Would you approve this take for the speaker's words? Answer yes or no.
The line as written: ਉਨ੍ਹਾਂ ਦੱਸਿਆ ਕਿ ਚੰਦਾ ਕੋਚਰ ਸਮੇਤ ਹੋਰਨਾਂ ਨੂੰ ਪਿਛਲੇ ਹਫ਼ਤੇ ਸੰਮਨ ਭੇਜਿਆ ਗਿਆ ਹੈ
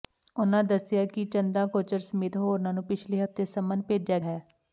no